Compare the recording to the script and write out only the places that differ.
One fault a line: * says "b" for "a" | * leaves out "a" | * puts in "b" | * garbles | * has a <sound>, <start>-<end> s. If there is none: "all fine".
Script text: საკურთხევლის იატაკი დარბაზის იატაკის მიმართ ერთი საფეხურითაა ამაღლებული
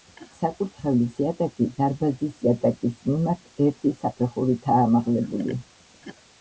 all fine